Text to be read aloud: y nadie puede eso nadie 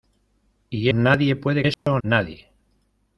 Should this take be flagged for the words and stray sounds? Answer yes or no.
yes